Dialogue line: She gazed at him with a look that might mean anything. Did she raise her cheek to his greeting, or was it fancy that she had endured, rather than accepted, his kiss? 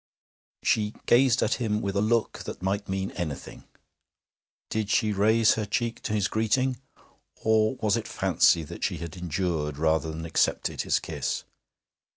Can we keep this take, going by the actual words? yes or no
yes